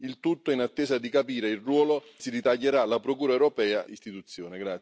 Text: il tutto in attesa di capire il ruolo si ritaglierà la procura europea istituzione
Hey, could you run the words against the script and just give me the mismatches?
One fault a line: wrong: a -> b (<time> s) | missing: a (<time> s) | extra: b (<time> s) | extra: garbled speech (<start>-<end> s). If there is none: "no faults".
no faults